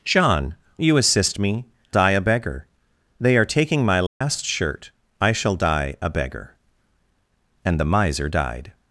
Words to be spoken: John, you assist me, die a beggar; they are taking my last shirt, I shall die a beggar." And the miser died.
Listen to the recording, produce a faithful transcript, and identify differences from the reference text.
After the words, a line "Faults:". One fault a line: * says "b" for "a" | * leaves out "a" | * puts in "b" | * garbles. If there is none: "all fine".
John, you assist me, die a beggar; they are taking my last shirt, I shall die a beggar." And the miser died.
Faults:
all fine